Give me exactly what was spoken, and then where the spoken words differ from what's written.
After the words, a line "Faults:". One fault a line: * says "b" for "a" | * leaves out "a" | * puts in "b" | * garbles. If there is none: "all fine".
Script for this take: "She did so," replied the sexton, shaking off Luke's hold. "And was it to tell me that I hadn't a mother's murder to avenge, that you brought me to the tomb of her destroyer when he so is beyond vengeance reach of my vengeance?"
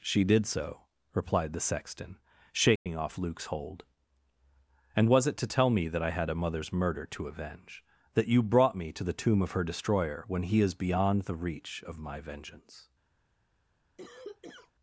"She did so," replied the sexton, shaking off Luke's hold. "And was it to tell me that I had a mother's murder to avenge, that you brought me to the tomb of her destroyer when he is beyond the reach of my vengeance?"
Faults:
* says "had" for "hadn't"
* leaves out "so"
* says "the" for "vengeance"